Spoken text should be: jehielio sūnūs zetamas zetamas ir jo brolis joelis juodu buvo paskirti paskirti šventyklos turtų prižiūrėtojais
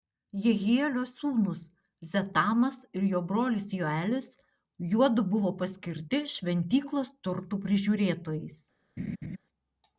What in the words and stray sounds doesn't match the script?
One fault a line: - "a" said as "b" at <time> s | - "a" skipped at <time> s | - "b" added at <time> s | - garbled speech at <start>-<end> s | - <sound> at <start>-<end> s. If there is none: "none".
- "zetamas" skipped at 2.8 s
- "paskirti" skipped at 6.2 s
- laugh at 9.0-9.4 s